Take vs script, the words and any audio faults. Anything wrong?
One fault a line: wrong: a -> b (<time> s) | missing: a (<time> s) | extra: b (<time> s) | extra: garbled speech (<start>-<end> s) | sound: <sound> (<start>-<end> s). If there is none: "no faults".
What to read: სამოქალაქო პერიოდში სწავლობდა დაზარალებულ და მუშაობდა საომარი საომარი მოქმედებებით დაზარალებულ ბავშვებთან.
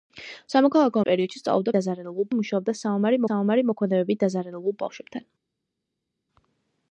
no faults